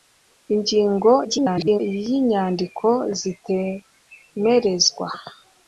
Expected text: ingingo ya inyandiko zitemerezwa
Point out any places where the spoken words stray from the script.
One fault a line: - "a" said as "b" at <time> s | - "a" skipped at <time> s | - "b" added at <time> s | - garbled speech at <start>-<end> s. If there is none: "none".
- garbled speech at 1.2-1.8 s